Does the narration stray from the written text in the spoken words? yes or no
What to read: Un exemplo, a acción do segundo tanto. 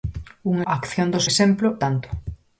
yes